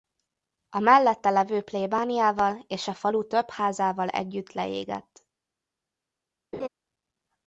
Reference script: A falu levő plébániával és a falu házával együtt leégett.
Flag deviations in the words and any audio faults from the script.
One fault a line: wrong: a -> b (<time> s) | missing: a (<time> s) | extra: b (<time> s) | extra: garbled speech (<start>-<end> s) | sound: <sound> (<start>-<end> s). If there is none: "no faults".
wrong: falu -> mellette (0.8 s)
extra: több (3.3 s)
sound: laugh (6.5-6.7 s)